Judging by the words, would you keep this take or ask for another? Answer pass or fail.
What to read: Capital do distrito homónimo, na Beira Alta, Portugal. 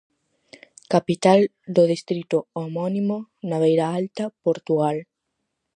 pass